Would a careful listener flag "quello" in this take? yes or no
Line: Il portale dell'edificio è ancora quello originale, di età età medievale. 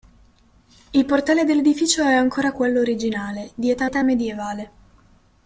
no